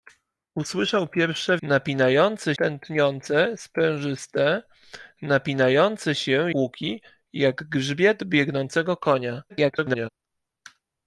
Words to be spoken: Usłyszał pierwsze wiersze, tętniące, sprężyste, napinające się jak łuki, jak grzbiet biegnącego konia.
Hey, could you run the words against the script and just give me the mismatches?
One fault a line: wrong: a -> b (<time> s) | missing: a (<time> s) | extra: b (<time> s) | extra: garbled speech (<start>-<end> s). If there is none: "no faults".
wrong: wiersze -> napinające (1.6 s)
missing: jak (6.5 s)
extra: garbled speech (9.5-10.1 s)